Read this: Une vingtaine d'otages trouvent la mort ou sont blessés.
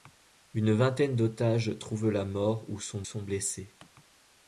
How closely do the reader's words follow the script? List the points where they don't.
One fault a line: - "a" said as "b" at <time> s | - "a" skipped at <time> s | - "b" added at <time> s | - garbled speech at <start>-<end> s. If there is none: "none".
- "sont" added at 3.0 s